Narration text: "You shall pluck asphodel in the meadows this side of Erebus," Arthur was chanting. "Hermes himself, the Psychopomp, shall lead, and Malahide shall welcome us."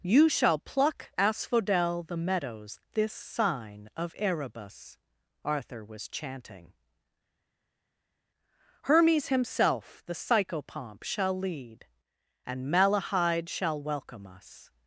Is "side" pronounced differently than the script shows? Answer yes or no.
yes